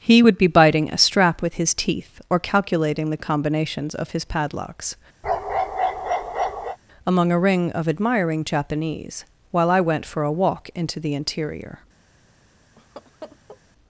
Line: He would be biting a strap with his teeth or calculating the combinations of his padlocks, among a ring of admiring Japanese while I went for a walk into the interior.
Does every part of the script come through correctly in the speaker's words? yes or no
yes